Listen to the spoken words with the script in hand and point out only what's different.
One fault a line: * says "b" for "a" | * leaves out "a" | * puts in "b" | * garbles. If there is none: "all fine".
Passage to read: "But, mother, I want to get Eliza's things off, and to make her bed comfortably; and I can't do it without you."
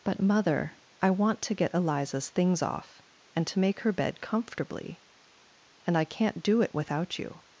all fine